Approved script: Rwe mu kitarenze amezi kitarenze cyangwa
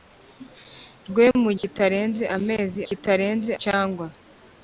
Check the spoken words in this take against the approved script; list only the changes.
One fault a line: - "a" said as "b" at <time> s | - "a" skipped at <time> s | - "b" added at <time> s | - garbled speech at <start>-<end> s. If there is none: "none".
none